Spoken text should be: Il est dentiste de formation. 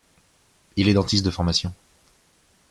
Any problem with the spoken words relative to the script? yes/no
no